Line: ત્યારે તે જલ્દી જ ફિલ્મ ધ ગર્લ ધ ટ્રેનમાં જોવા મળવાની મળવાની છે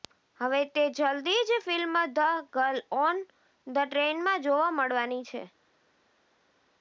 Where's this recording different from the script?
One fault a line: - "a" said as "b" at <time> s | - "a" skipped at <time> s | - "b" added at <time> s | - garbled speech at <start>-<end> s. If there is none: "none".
- "ત્યારે" said as "હવે" at 0.4 s
- "ઓન" added at 3.0 s
- "મળવાની" skipped at 5.2 s